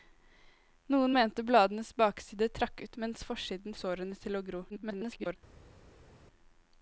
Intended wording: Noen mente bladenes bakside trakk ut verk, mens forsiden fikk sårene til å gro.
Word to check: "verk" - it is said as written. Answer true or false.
false